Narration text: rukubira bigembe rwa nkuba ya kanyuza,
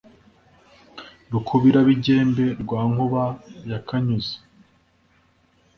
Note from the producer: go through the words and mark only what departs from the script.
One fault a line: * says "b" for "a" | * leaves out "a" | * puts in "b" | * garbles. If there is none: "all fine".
all fine